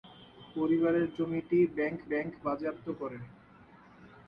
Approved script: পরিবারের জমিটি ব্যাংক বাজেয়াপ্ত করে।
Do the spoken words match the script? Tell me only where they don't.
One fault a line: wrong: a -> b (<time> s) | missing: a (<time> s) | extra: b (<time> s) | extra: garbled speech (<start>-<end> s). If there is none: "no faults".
extra: ব্যাংক (2.1 s)